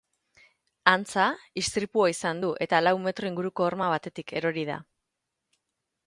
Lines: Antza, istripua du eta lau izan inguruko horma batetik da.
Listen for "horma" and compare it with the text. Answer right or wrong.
right